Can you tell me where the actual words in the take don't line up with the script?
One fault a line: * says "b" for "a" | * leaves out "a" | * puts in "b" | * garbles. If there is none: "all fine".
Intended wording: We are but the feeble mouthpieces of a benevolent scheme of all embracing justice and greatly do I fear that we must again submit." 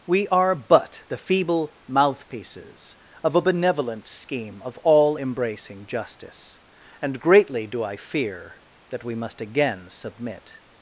all fine